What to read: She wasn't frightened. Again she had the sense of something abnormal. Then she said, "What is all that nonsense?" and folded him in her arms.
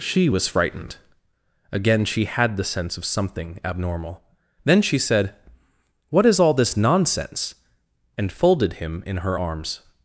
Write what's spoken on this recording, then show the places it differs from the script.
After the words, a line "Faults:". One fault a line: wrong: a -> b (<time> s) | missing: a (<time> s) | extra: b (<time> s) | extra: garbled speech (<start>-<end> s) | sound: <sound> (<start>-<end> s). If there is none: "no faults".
She was frightened. Again she had the sense of something abnormal. Then she said, "What is all this nonsense?" and folded him in her arms.
Faults:
wrong: wasn't -> was (0.3 s)
wrong: that -> this (6.5 s)